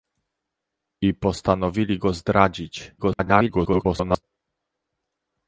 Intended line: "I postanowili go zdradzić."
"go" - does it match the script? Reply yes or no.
yes